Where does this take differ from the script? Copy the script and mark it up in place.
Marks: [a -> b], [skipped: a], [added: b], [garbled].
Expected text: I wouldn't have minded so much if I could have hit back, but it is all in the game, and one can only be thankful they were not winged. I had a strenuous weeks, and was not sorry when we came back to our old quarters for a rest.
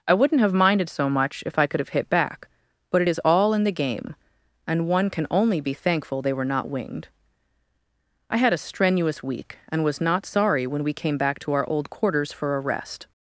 I wouldn't have minded so much if I could have hit back, but it is all in the game, and one can only be thankful they were not winged. I had a strenuous [weeks, -> week] and was not sorry when we came back to our old quarters for a rest.